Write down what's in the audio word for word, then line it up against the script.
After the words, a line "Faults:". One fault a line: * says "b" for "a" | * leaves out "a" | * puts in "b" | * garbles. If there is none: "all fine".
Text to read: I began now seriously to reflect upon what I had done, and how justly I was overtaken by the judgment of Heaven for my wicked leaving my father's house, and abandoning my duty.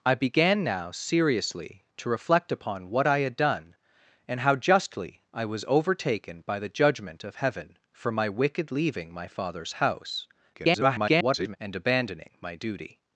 I began now seriously to reflect upon what I had done, and how justly I was overtaken by the judgment of Heaven for my wicked leaving my father's house, [garbled] and abandoning my duty.
Faults:
* garbles